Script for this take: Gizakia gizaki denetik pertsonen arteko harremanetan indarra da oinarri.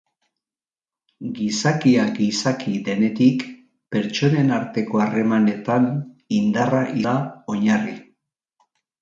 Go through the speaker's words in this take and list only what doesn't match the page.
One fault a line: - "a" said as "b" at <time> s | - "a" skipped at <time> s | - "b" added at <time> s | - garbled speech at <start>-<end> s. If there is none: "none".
none